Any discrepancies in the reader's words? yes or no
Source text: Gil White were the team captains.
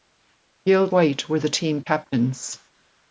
no